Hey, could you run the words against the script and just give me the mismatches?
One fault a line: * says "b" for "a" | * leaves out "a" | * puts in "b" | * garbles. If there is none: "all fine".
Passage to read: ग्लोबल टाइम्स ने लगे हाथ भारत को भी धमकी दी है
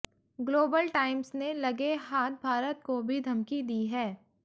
all fine